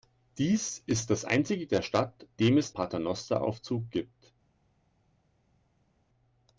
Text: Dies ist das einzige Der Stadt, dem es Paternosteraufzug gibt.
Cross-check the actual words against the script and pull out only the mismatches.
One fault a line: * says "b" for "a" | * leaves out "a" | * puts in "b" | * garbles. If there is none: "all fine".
all fine